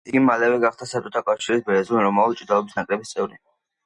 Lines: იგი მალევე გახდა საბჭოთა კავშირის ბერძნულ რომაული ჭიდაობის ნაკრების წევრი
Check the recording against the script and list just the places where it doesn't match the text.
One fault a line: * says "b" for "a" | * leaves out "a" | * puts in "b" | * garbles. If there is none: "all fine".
all fine